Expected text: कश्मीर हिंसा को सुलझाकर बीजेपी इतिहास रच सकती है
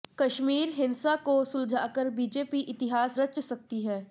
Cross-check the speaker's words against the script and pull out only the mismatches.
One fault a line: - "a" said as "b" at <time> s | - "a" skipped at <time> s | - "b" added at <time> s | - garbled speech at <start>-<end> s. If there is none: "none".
none